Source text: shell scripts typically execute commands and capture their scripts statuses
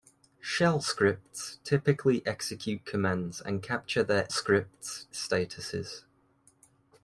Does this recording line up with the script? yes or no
yes